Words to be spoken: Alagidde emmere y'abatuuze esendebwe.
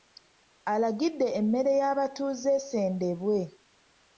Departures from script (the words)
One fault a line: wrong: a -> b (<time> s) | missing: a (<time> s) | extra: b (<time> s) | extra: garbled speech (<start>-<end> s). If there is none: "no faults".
no faults